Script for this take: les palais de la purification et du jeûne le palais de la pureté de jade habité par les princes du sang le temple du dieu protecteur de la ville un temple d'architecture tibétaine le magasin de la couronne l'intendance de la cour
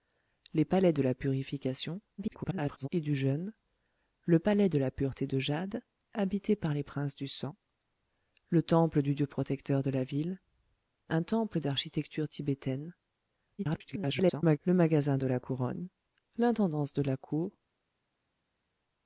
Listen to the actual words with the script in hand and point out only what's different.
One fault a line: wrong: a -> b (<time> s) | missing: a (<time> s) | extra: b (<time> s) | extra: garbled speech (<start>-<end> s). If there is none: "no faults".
extra: garbled speech (2.2-2.9 s)
extra: garbled speech (13.6-14.6 s)